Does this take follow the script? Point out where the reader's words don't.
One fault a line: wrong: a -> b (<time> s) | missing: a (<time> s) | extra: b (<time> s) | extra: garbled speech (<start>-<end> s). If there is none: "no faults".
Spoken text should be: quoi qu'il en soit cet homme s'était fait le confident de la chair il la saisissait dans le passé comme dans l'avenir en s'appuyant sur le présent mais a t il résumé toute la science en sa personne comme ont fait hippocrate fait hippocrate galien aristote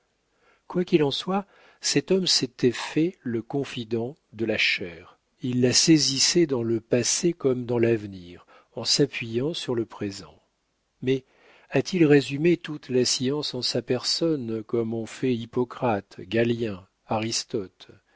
missing: fait hippocrate (16.2 s)